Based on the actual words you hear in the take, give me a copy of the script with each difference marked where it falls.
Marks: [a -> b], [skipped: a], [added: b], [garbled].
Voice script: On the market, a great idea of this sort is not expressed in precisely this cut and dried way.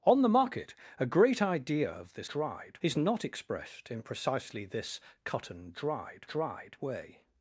On the market, a great idea of this [sort -> dried] is not expressed in precisely this cut and dried [added: dried] way.